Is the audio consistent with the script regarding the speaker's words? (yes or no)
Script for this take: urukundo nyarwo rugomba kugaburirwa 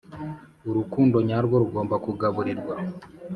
yes